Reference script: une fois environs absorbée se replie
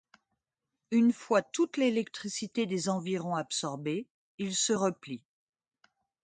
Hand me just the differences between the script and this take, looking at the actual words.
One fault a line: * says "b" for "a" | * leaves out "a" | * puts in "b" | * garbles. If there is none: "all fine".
* puts in "toute l'électricité des"
* puts in "il"